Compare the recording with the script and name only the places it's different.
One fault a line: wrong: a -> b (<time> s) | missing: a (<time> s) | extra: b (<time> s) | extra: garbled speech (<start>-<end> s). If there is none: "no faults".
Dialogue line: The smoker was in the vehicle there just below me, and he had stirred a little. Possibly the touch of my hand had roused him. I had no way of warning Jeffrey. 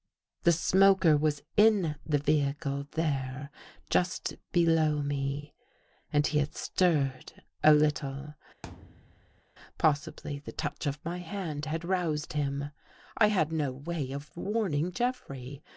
no faults